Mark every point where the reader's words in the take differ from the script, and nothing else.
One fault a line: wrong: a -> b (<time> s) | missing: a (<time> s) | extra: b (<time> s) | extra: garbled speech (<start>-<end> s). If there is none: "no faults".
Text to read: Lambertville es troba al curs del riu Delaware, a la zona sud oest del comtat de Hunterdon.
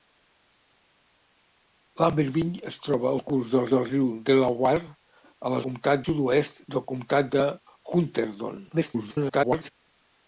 extra: del (3.8 s)
wrong: zona -> comtat (5.7 s)
extra: garbled speech (8.7-9.7 s)